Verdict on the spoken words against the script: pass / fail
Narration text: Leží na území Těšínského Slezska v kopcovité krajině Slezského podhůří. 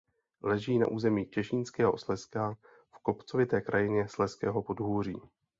pass